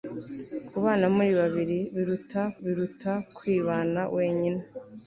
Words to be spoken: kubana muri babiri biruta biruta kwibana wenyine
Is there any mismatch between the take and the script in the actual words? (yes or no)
no